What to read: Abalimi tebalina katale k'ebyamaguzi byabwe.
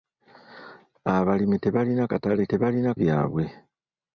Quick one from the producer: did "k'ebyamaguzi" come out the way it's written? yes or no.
no